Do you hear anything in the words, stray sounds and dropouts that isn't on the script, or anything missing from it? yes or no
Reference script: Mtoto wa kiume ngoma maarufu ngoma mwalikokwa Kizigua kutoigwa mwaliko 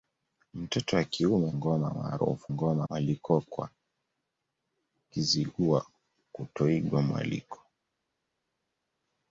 no